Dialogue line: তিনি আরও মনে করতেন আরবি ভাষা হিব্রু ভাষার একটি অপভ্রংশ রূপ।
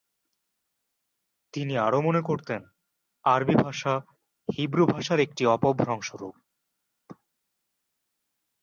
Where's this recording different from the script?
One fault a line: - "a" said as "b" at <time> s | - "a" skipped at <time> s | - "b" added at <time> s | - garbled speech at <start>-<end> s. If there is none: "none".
none